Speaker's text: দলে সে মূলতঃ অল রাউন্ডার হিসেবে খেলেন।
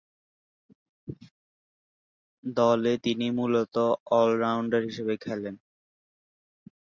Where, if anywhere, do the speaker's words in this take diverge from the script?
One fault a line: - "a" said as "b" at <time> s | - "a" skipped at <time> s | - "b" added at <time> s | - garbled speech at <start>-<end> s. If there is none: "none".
- "সে" said as "তিনি" at 3.0 s